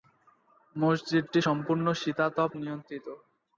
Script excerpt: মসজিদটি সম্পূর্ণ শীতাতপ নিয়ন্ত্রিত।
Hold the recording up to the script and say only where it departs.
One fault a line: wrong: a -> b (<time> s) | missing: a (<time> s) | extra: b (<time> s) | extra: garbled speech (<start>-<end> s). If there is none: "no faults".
no faults